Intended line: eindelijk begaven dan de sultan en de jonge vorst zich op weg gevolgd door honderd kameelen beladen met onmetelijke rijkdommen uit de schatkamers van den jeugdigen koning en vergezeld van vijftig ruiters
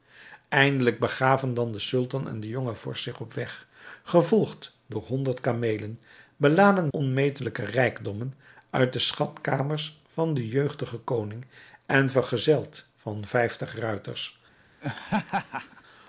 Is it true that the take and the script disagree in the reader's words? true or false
true